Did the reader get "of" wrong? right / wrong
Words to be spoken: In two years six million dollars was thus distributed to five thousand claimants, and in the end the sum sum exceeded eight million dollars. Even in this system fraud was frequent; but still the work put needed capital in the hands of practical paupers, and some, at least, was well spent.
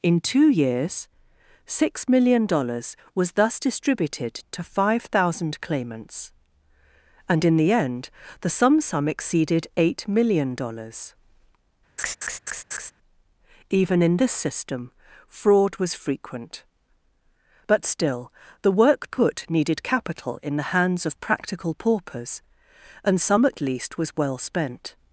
right